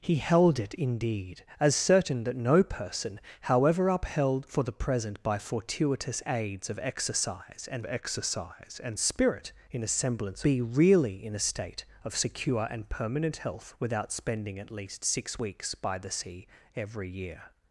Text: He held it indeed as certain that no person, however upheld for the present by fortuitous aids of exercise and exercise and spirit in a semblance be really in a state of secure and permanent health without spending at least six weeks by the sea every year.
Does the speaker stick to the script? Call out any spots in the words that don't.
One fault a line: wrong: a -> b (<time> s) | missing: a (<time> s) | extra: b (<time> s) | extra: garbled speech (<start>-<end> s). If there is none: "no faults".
no faults